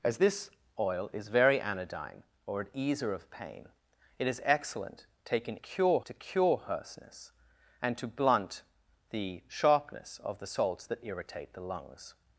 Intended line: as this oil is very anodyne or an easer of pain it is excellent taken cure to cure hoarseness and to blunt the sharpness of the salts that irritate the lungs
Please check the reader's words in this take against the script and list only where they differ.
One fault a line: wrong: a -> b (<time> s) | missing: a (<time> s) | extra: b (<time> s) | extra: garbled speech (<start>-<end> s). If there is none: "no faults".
no faults